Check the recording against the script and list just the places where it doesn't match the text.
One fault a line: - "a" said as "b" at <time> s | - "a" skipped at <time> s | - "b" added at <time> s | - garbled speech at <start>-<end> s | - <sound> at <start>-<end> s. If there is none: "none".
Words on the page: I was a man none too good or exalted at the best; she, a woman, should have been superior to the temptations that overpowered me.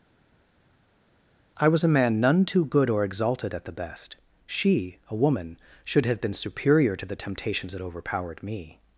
none